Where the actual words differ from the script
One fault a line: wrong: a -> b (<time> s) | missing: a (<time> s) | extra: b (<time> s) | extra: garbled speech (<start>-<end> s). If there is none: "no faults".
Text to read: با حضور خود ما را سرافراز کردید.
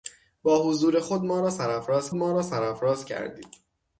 extra: ما را سرافراز (2.1 s)